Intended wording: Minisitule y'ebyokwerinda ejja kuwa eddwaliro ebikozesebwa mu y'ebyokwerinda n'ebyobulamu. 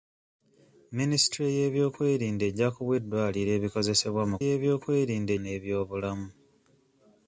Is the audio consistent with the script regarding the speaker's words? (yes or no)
yes